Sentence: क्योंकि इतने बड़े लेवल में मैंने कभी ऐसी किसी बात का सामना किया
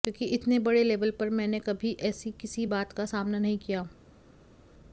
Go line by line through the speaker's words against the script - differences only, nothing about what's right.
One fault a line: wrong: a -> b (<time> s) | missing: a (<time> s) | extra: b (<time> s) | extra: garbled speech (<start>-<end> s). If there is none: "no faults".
wrong: में -> पर (1.1 s)
extra: नहीं (3.4 s)